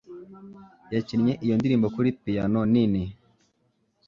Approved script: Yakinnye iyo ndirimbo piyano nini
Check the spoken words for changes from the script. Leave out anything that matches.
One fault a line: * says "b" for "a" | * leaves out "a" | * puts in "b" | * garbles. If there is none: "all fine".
* puts in "kuri"